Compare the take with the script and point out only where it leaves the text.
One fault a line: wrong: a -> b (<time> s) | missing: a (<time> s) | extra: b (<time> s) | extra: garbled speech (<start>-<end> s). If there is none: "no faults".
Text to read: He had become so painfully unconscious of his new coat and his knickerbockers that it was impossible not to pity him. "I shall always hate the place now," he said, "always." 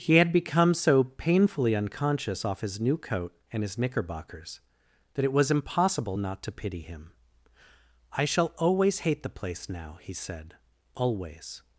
wrong: of -> off (2.4 s)